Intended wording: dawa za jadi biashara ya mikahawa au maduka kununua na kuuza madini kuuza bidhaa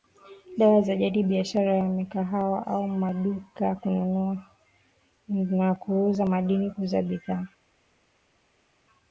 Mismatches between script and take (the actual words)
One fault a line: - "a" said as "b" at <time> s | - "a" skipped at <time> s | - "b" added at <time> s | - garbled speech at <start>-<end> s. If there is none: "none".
none